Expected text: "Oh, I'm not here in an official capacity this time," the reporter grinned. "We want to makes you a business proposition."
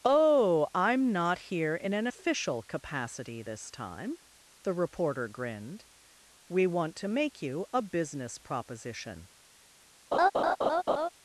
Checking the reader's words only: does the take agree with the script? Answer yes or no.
no